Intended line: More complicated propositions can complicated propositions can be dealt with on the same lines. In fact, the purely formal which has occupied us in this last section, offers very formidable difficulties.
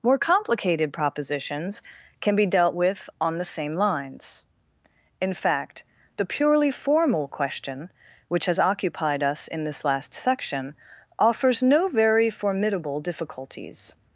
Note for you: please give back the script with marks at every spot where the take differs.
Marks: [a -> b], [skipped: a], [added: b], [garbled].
More complicated propositions can [skipped: complicated propositions can] be dealt with on the same lines. In fact, the purely formal [added: question] which has occupied us in this last section, offers [added: no] very formidable difficulties.